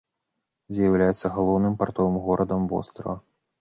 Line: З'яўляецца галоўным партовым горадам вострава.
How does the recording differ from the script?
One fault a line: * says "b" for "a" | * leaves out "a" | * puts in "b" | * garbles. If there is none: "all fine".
all fine